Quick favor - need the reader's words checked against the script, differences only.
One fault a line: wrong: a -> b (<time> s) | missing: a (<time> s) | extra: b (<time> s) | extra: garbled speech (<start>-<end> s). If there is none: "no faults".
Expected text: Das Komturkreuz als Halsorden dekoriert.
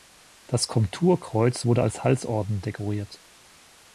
extra: wurde (1.7 s)